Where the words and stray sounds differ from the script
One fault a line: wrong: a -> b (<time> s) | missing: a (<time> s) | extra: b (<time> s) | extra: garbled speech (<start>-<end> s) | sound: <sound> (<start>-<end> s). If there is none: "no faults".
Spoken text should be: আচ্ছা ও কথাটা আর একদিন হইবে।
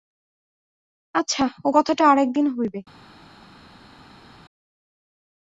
no faults